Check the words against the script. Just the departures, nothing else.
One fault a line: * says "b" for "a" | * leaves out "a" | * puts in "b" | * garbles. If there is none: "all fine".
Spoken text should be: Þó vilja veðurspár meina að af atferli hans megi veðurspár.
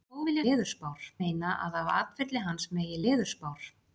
all fine